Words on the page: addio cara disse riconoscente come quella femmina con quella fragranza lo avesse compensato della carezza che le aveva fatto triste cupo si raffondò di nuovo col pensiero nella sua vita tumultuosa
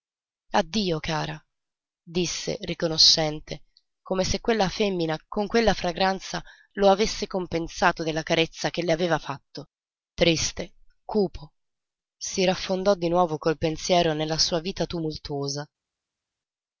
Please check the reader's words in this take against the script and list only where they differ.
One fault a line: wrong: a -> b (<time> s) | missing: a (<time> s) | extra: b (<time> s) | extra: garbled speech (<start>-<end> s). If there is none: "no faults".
extra: se (4.2 s)